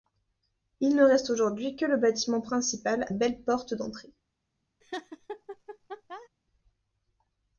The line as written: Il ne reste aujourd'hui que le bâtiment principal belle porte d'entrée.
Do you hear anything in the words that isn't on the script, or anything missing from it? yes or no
no